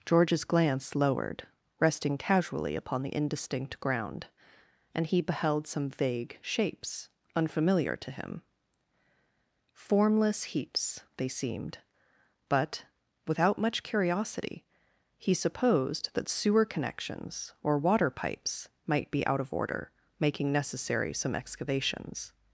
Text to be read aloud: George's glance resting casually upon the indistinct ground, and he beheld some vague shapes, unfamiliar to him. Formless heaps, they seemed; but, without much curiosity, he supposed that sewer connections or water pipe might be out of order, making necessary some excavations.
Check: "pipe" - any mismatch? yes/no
yes